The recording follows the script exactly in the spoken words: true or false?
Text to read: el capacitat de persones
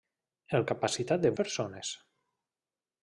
true